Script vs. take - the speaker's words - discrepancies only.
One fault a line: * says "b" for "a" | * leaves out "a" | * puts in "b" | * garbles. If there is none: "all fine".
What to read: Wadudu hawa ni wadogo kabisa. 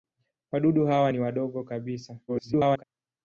* garbles